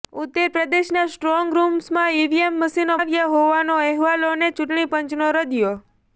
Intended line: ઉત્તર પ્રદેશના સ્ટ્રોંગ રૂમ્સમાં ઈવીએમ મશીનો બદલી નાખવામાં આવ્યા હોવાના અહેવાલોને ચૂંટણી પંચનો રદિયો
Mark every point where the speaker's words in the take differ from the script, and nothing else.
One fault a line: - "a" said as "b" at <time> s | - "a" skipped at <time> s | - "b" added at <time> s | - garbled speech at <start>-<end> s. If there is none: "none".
- "બદલી નાખવામાં" skipped at 3.0 s